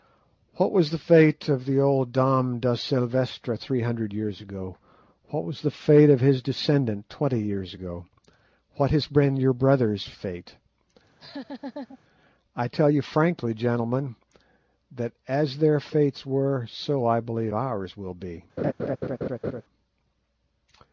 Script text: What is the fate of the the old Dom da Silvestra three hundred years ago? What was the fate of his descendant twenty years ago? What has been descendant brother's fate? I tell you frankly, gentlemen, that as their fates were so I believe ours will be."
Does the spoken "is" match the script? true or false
false